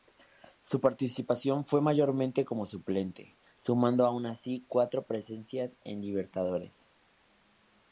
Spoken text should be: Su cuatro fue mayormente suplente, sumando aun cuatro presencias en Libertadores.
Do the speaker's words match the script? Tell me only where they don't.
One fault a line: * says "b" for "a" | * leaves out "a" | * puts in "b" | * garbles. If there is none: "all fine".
* says "participación" for "cuatro"
* puts in "como"
* puts in "así"